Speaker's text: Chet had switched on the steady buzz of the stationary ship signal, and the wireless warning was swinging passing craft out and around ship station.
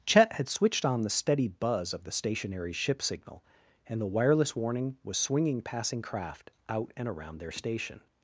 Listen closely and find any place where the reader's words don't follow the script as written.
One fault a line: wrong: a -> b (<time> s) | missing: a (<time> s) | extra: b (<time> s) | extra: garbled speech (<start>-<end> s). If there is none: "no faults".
wrong: ship -> their (7.4 s)